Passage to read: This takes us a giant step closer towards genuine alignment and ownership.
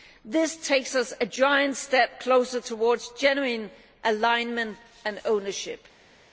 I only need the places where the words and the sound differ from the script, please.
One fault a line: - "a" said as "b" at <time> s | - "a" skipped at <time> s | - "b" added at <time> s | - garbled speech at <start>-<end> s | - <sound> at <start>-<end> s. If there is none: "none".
none